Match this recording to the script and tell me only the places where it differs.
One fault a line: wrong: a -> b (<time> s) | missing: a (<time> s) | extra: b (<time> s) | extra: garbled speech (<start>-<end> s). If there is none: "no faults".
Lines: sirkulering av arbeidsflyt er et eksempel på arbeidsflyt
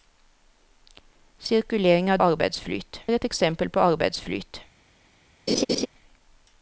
no faults